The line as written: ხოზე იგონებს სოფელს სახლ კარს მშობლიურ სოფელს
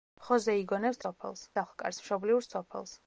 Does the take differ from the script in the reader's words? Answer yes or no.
no